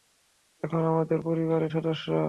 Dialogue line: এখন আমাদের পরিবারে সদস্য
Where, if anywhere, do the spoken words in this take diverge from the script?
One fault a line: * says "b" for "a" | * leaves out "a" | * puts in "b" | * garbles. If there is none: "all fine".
all fine